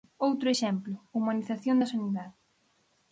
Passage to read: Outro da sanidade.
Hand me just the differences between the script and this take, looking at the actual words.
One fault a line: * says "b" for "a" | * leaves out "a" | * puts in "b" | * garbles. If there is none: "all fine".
* puts in "exemplo humanización"